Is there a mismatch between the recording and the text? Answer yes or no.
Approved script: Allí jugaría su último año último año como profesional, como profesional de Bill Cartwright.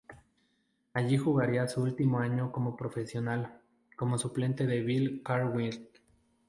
yes